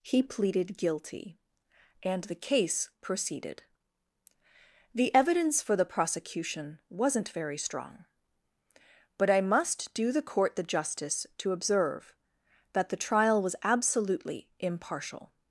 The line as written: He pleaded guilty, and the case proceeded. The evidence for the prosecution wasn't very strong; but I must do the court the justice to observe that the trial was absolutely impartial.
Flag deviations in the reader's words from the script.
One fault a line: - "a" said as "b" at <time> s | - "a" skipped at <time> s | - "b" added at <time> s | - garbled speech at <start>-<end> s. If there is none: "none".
none